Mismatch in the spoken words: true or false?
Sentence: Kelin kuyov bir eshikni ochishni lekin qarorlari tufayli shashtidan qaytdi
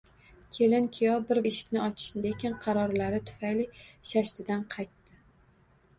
false